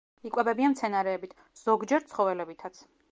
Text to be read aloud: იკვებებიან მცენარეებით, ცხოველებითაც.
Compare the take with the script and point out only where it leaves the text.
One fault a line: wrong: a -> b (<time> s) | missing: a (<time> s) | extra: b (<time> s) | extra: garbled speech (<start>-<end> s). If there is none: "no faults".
extra: ზოგჯერ (1.6 s)